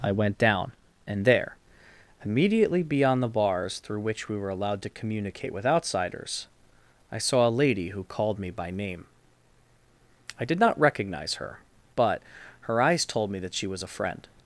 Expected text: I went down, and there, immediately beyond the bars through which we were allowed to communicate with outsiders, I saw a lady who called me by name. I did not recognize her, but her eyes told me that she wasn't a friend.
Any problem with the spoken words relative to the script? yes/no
yes